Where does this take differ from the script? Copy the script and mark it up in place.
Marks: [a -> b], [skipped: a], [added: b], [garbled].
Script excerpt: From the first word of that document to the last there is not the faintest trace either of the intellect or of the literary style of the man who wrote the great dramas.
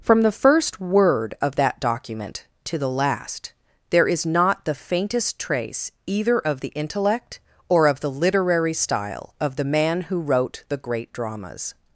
From the first word of that document to the last there is not the faintest trace either of the intellect or of the literary style of the man who wrote the great dramas.